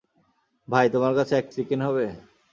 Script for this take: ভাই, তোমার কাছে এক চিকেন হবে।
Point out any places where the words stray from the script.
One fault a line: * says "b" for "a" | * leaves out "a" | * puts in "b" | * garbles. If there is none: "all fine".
all fine